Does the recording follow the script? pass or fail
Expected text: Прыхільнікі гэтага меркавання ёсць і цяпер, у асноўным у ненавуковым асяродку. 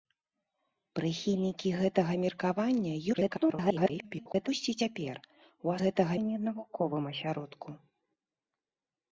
fail